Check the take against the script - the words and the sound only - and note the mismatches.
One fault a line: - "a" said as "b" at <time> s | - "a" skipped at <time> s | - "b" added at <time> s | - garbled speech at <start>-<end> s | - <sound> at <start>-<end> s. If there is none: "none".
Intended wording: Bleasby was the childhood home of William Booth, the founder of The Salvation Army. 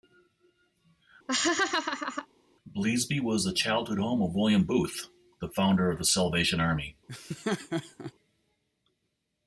- laugh at 1.3-2.3 s
- laugh at 7.1-8.1 s